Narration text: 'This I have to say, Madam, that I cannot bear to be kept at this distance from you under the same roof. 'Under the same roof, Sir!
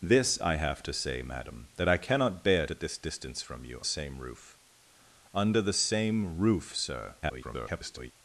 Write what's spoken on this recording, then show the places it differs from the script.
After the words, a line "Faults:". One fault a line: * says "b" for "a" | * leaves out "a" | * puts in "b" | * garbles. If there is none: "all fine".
'This I have to say, Madam, that I cannot bear at this distance from you same roof. 'Under the same roof, Sir! [garbled]
Faults:
* leaves out "to be kept"
* leaves out "under the"
* garbles